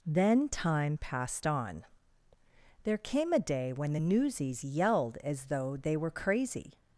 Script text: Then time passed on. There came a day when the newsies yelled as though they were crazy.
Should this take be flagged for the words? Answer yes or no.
no